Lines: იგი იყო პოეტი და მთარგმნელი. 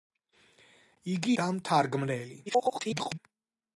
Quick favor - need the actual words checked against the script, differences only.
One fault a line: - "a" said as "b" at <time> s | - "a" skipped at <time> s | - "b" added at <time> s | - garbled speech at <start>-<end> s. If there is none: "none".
- "იყო პოეტი" skipped at 1.4 s
- garbled speech at 2.5-3.2 s